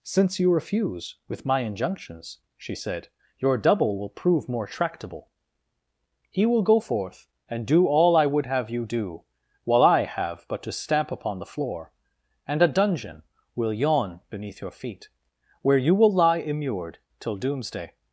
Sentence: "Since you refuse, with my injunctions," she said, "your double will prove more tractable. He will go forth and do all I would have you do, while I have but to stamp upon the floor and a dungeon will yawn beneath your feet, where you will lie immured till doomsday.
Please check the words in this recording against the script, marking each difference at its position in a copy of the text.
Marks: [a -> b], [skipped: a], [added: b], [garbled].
"Since you refuse, with my injunctions," she said, "your double will prove more tractable. He will go forth and do all I would have you do, while I have but to stamp upon the floor and a dungeon will yawn beneath your feet, where you will lie immured till doomsday.